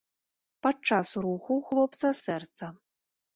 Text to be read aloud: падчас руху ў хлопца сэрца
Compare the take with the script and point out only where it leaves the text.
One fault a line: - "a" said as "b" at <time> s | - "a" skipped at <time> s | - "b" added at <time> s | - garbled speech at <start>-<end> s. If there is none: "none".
none